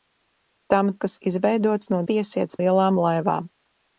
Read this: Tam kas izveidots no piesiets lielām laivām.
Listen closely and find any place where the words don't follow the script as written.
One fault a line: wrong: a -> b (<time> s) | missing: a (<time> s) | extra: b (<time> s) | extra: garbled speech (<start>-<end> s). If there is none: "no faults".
no faults